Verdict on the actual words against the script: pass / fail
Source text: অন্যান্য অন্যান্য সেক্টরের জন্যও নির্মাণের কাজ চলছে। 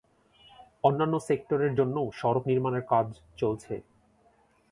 fail